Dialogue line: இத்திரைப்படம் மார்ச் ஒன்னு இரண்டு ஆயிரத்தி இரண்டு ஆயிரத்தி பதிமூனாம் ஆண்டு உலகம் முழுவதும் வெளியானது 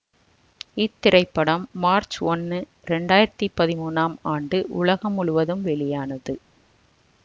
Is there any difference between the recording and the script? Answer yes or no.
yes